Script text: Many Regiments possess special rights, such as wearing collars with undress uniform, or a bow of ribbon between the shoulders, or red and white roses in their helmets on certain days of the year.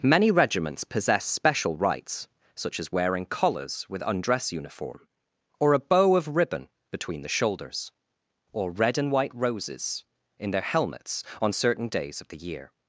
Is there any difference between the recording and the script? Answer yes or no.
no